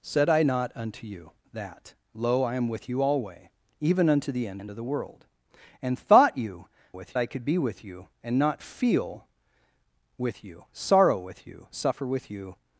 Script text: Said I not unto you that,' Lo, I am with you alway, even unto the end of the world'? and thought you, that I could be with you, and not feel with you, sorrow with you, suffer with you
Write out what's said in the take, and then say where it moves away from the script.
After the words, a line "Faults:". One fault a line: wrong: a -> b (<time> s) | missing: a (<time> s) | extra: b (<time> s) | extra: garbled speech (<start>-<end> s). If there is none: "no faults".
Said I not unto you that,' Lo, I am with you alway, even unto the end end of the world'? and thought you, with I could be with you, and not feel with you, sorrow with you, suffer with you
Faults:
extra: end (4.6 s)
wrong: that -> with (6.9 s)